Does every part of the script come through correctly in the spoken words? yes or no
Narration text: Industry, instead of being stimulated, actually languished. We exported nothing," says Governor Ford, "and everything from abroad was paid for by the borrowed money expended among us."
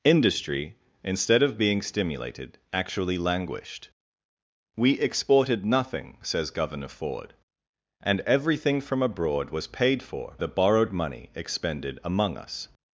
no